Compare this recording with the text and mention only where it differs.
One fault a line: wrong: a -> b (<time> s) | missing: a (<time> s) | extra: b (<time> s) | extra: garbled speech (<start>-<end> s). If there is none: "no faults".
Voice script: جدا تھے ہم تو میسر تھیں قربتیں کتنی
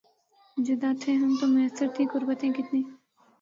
no faults